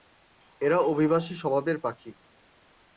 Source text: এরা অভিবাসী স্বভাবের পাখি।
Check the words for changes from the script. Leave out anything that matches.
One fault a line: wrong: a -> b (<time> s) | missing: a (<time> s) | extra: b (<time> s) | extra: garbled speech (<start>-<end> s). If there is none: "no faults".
no faults